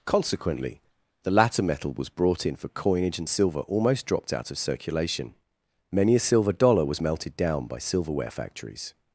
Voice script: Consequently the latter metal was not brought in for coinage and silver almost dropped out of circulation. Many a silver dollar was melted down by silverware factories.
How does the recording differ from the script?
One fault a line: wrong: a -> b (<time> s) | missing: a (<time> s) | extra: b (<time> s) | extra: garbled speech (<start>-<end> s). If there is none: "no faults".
missing: not (2.1 s)